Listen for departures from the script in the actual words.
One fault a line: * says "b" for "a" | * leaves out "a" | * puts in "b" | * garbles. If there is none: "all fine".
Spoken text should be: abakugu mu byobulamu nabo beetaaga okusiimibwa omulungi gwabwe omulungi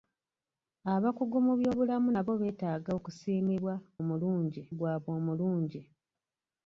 all fine